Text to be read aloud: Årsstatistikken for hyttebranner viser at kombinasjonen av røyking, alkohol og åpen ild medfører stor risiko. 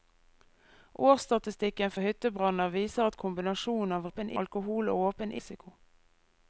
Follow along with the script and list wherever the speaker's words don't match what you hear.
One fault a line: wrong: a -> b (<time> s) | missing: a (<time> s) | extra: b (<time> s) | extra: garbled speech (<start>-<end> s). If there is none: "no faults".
wrong: røyking -> åpen (4.1 s)
missing: ild medfører stor (5.4 s)